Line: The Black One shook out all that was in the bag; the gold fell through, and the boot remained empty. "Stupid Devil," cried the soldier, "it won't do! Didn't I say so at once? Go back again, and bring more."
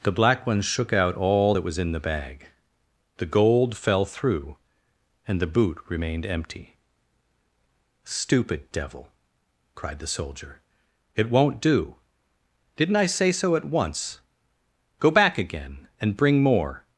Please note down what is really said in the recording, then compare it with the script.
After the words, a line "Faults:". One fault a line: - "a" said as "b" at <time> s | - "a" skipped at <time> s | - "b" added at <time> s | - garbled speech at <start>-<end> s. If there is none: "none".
The Black One shook out all that was in the bag; the gold fell through, and the boot remained empty. "Stupid Devil," cried the soldier, "it won't do! Didn't I say so at once? Go back again, and bring more."
Faults:
none